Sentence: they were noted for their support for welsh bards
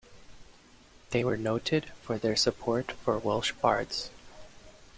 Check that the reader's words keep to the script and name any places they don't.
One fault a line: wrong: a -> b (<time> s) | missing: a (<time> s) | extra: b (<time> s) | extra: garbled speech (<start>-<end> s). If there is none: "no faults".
no faults